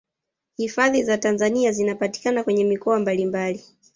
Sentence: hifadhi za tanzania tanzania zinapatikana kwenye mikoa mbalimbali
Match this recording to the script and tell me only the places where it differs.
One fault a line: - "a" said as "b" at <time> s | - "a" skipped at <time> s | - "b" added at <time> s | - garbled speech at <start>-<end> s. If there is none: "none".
- "tanzania" skipped at 1.7 s